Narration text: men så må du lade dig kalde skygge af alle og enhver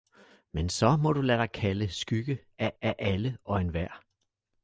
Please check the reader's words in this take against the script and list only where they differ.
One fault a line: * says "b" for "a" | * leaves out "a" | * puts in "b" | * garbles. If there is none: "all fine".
* puts in "af"